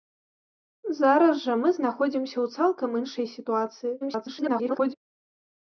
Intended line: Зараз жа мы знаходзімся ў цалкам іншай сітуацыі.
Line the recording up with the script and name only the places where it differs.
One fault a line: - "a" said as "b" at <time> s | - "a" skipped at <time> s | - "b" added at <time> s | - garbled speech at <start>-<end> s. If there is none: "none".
- garbled speech at 4.0-4.9 s